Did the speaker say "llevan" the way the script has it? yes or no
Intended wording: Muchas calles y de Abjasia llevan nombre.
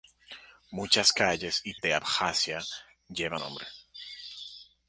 yes